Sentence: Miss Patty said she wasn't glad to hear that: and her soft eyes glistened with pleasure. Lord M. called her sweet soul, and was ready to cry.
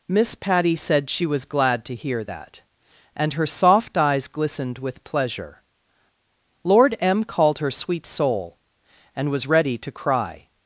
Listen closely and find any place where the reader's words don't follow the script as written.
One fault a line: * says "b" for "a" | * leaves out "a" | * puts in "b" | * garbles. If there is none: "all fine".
* says "was" for "wasn't"